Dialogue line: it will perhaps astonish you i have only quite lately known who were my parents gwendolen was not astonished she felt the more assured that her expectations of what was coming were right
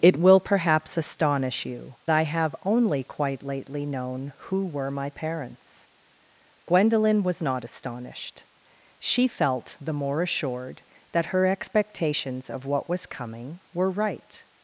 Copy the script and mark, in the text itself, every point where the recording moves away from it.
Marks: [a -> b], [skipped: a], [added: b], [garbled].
it will perhaps astonish you i have only quite lately known who were my parents gwendolen was not astonished she felt the more assured that her expectations of what was coming were right